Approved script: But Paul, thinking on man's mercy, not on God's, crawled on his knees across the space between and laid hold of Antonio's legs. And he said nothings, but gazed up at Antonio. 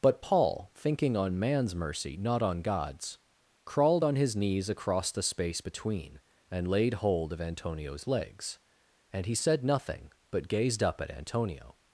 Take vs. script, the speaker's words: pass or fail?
fail